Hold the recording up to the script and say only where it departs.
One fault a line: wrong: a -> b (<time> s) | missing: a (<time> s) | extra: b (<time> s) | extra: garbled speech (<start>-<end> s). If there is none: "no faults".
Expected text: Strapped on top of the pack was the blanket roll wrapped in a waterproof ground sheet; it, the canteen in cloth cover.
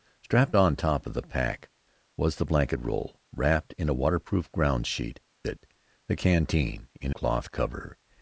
no faults